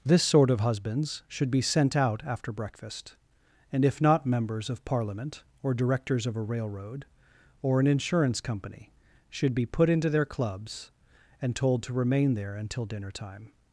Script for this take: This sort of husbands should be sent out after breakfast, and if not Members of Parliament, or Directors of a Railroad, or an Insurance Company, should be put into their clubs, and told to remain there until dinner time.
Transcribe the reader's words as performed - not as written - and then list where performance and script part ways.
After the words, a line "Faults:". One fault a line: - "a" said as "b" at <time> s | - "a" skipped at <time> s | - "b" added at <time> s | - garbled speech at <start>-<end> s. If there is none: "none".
This sort of husbands should be sent out after breakfast, and if not Members of Parliament, or Directors of a Railroad, or an Insurance Company, should be put into their clubs, and told to remain there until dinner time.
Faults:
none